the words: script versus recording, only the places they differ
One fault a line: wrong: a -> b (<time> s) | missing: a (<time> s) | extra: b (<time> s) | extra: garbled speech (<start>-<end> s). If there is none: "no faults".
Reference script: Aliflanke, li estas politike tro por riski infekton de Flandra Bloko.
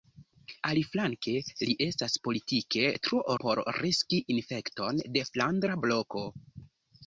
no faults